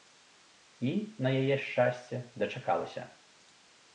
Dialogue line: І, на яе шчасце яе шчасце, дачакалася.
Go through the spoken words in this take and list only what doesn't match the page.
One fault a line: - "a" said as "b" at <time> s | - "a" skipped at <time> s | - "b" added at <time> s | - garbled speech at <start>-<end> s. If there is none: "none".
- "яе шчасце" skipped at 2.2 s